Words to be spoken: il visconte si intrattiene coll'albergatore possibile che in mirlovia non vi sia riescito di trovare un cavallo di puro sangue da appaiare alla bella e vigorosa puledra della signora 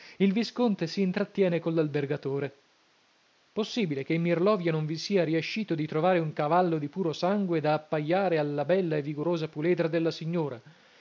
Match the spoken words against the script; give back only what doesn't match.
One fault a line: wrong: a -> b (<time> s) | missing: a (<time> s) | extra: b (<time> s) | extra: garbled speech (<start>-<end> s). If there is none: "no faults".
no faults